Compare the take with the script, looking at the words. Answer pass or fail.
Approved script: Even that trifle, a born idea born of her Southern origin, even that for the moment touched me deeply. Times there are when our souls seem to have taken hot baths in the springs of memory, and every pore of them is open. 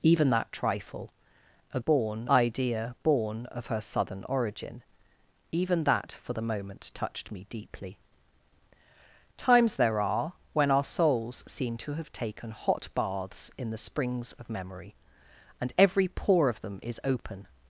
pass